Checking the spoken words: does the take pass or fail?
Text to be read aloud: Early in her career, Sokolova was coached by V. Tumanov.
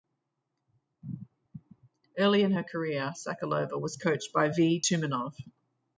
pass